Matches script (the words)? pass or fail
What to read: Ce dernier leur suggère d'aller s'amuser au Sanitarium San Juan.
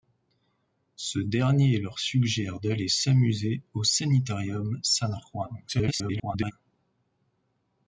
fail